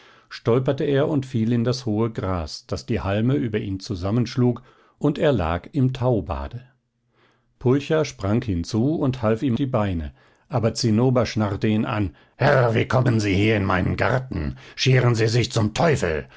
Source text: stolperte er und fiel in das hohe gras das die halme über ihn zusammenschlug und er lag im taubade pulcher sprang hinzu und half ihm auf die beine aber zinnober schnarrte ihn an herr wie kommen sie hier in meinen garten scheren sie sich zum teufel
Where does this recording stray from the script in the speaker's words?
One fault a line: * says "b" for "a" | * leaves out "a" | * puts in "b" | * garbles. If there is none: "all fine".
* leaves out "auf"